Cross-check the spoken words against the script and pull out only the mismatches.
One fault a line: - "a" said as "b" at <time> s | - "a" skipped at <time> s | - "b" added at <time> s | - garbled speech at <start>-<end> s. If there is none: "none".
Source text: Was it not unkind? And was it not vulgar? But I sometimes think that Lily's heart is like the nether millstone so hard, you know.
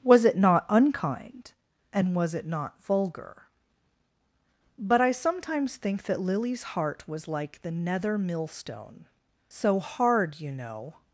- "is" said as "was" at 7.1 s